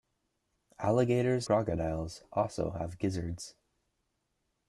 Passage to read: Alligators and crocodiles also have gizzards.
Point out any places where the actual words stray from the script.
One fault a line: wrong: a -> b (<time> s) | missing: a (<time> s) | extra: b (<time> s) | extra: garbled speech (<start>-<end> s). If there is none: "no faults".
missing: and (1.5 s)